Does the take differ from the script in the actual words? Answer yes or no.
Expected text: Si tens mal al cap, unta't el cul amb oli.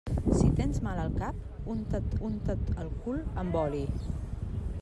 yes